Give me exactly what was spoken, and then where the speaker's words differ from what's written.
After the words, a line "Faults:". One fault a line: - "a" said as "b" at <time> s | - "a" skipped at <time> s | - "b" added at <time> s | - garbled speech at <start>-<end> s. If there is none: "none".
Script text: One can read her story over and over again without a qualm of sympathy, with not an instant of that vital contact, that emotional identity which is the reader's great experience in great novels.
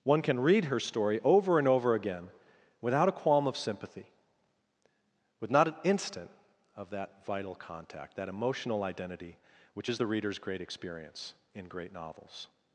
One can read her story over and over again without a qualm of sympathy, with not an instant of that vital contact, that emotional identity which is the reader's great experience in great novels.
Faults:
none